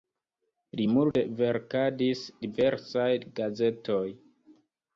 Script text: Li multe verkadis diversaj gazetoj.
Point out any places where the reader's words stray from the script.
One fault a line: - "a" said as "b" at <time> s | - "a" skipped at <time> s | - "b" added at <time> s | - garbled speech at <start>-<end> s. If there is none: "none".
none